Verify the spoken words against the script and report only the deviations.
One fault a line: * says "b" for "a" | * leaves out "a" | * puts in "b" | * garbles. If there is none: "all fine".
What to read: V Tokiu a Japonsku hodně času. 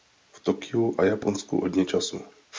all fine